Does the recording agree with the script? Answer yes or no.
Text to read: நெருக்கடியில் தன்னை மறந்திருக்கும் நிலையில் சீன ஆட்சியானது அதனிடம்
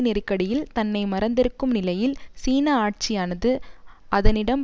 yes